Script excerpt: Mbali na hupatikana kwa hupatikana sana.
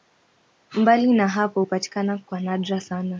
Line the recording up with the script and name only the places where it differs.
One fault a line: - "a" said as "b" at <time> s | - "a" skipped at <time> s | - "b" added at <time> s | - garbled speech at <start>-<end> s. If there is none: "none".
- "hapo" added at 1.3 s
- "hupatikana" said as "nadra" at 2.4 s